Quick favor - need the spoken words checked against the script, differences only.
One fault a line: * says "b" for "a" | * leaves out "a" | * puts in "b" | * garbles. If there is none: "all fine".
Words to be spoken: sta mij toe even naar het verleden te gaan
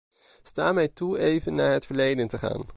all fine